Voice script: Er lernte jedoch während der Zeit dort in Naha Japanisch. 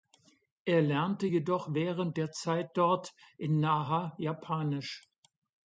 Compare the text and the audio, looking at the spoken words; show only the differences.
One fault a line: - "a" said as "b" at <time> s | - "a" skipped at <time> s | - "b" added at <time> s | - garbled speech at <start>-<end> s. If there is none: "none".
none